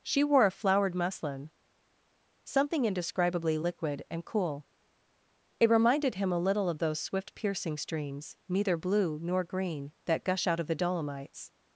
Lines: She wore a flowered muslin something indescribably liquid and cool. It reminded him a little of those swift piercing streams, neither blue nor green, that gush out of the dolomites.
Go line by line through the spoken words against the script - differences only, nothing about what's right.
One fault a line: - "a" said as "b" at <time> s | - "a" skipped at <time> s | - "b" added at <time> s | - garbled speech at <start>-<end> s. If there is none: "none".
none